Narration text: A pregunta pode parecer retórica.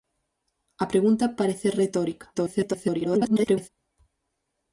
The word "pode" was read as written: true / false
false